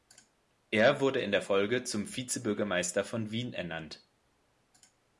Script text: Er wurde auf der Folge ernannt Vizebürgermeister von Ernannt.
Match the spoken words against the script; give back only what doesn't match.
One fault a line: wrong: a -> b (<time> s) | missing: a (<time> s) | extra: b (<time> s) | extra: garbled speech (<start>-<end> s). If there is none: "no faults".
wrong: auf -> in (1.2 s)
wrong: ernannt -> zum (1.8 s)
extra: Wien (3.3 s)